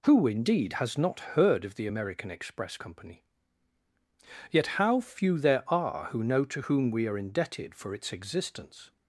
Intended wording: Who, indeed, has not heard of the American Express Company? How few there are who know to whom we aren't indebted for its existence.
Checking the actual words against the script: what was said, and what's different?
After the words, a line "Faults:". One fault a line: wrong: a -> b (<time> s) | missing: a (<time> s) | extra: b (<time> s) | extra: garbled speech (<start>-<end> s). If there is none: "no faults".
Who, indeed, has not heard of the American Express Company? Yet, how few there are who know to whom we are indebted for its existence.
Faults:
extra: Yet (4.5 s)
wrong: aren't -> are (7.1 s)